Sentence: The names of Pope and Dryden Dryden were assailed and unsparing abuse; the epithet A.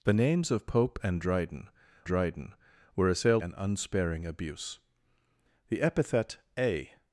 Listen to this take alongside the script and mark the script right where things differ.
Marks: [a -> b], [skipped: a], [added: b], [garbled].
The names of Pope and Dryden Dryden were assailed and unsparing abuse; the epithet A.